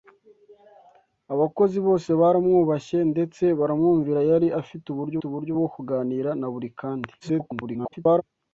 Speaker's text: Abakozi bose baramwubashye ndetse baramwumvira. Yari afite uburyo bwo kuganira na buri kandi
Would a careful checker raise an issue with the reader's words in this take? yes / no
yes